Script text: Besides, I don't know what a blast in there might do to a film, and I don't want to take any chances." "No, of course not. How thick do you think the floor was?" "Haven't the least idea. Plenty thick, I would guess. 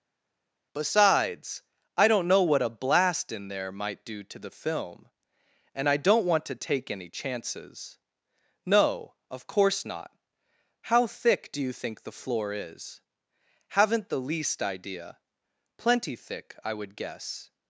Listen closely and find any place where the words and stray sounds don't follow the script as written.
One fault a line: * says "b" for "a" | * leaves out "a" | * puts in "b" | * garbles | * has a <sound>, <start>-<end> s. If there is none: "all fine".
* says "the" for "a"
* says "is" for "was"